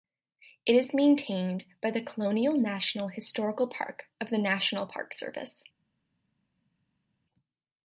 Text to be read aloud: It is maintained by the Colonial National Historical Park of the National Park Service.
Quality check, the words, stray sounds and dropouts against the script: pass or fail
pass